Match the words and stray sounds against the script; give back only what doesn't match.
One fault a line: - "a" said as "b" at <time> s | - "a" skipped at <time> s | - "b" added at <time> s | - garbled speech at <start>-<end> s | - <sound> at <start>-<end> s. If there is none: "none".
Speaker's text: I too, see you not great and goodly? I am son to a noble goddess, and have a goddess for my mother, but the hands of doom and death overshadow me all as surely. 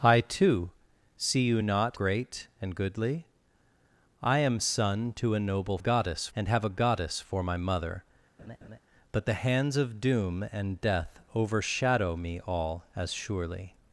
- laugh at 8.4-8.8 s